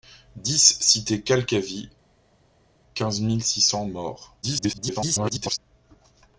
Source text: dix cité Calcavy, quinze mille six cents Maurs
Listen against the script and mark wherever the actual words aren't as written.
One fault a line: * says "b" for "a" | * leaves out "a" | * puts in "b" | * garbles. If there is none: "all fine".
* garbles